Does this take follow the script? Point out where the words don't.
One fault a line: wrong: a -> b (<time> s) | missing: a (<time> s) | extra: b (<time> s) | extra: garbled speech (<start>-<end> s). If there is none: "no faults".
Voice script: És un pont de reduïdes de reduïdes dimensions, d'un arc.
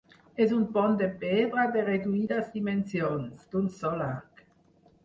wrong: reduïdes -> pedra (1.2 s)
extra: sol (3.8 s)